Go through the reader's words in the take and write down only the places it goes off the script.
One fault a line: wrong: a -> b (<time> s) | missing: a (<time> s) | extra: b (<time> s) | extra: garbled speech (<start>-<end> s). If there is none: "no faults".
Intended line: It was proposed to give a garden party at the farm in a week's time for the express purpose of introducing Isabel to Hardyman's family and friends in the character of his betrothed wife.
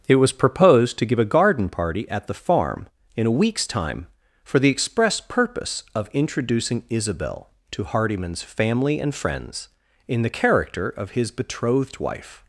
no faults